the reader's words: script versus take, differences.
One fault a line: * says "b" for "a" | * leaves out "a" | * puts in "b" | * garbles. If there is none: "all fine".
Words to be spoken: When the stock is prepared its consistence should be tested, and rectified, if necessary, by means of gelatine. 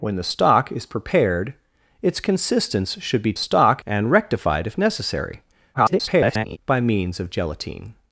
* says "stock" for "tested"
* garbles